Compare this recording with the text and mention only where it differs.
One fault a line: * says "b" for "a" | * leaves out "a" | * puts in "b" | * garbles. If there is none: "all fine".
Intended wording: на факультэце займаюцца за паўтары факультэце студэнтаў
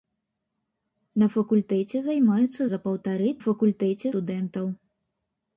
all fine